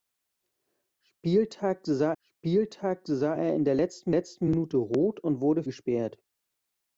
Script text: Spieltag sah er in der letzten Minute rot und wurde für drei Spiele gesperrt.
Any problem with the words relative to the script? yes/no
yes